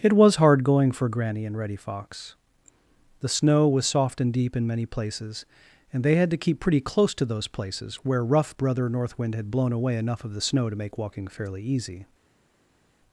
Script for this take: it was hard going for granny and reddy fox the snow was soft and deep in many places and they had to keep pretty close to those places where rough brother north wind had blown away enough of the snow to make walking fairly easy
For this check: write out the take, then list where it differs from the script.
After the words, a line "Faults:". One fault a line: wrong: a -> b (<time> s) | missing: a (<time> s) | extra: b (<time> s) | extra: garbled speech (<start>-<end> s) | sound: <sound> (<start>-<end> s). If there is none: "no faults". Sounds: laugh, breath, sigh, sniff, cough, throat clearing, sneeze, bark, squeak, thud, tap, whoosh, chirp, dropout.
it was hard going for granny and reddy fox the snow was soft and deep in many places and they had to keep pretty close to those places where rough brother north wind had blown away enough of the snow to make walking fairly easy
Faults:
no faults